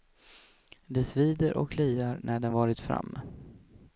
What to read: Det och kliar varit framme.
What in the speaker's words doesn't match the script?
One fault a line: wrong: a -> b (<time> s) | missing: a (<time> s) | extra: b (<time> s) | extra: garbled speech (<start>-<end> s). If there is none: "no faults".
extra: svider (1.0 s)
extra: när den (2.2 s)